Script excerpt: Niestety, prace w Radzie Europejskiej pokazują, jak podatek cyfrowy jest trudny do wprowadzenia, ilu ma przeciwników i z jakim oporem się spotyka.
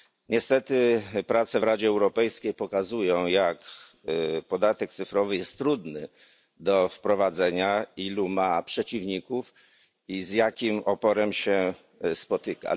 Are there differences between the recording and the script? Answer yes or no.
no